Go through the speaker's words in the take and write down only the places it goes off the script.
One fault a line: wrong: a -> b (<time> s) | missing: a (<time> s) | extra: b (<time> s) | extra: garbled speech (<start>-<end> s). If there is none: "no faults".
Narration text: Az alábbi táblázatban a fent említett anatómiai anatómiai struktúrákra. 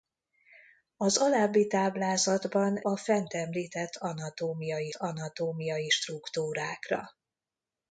no faults